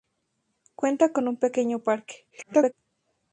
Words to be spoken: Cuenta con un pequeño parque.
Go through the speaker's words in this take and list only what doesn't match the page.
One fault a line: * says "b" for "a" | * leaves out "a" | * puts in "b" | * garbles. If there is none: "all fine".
* garbles